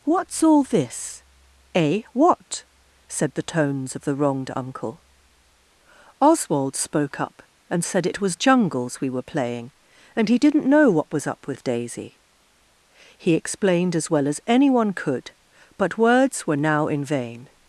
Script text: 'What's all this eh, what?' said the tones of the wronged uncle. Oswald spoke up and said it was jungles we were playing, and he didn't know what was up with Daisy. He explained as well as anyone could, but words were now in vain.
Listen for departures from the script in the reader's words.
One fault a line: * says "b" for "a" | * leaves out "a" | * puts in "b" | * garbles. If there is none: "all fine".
all fine